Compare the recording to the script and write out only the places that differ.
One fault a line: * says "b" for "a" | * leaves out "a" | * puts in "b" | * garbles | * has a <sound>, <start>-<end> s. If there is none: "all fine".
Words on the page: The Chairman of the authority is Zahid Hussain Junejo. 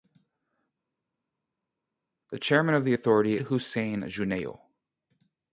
* leaves out "is Zahid"